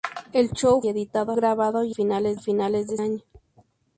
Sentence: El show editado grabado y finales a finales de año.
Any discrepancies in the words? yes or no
no